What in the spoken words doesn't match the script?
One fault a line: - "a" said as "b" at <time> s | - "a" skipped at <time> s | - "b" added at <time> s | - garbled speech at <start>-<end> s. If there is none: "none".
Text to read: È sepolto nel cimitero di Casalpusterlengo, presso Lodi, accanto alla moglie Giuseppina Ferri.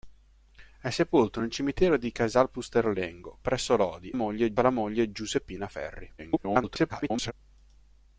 - "accanto" said as "moglie" at 4.1 s
- garbled speech at 6.2-7.3 s